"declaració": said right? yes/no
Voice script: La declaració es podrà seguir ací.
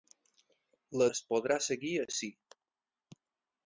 no